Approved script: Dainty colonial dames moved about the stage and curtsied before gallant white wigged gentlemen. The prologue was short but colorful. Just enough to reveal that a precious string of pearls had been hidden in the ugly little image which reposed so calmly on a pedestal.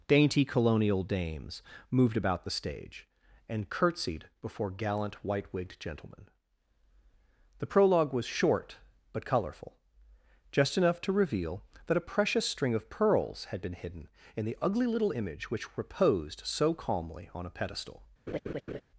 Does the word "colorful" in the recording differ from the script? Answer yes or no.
no